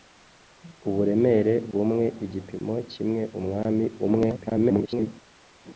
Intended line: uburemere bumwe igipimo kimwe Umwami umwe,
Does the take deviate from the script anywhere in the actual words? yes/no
yes